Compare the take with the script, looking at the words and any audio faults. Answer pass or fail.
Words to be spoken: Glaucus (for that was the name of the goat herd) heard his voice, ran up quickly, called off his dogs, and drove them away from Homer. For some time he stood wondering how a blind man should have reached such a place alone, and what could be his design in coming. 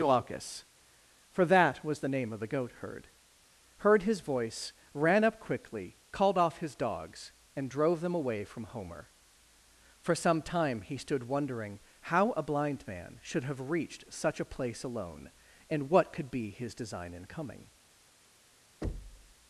fail